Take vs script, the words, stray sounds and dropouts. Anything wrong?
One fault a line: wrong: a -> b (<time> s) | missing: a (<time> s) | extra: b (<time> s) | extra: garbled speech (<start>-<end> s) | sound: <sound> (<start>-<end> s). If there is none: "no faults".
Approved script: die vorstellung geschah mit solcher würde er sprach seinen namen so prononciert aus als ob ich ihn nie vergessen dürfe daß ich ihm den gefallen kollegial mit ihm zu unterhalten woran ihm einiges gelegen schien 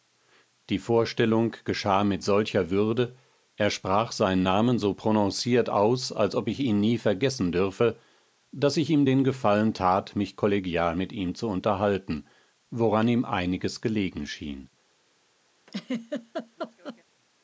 extra: tat mich (9.7 s)
sound: laugh (15.7-17.0 s)